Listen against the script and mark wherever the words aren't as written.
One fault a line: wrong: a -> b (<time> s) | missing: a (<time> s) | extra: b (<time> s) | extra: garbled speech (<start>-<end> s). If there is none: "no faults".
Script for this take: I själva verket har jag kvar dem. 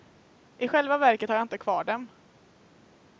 extra: inte (1.4 s)